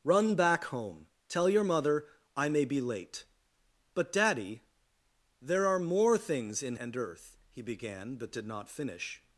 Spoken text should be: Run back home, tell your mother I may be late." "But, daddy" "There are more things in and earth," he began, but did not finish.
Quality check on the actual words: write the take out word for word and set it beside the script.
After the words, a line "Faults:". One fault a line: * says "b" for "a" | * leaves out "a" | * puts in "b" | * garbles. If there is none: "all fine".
Run back home, tell your mother I may be late." "But, daddy" "There are more things in and earth," he began, but did not finish.
Faults:
all fine